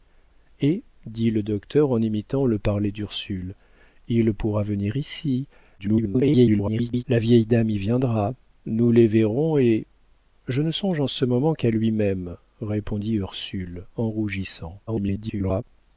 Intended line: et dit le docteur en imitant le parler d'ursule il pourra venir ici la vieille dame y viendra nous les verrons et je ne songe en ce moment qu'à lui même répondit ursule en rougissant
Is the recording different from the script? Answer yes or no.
yes